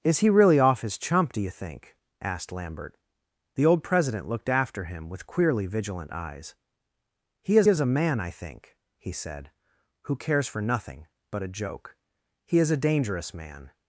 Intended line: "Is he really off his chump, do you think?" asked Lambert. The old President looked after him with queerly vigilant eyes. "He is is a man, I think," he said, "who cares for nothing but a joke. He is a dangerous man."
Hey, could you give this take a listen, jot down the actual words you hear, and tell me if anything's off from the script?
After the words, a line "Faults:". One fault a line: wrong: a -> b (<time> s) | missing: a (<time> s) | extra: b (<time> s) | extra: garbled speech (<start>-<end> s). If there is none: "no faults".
"Is he really off his chump, do you think?" asked Lambert. The old President looked after him with queerly vigilant eyes. "He is is a man, I think," he said, "who cares for nothing but a joke. He is a dangerous man."
Faults:
no faults